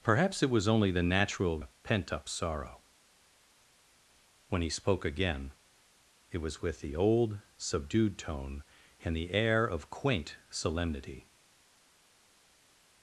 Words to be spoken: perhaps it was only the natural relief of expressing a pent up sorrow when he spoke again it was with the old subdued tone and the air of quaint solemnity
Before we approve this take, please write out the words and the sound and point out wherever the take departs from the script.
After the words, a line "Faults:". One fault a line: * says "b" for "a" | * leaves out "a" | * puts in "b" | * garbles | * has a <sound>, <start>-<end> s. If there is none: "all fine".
perhaps it was only the natural a pent up sorrow when he spoke again it was with the old subdued tone and the air of quaint solemnity
Faults:
* leaves out "relief of expressing"